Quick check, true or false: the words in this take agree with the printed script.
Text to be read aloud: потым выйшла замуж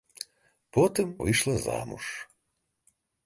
true